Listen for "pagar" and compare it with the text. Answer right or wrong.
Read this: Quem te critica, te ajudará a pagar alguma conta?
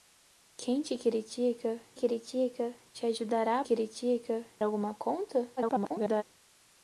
wrong